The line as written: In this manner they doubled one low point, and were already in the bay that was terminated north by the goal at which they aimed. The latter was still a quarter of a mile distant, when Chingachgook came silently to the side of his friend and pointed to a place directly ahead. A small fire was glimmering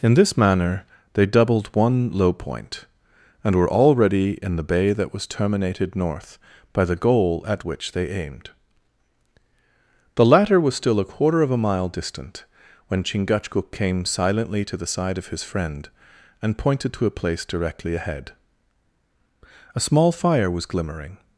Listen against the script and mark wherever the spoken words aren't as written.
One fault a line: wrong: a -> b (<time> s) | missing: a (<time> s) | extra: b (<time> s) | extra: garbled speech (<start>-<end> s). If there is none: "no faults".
no faults